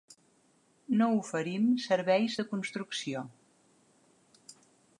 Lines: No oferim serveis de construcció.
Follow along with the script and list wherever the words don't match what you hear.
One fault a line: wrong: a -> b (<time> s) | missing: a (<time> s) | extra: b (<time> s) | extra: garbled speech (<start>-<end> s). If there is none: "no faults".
no faults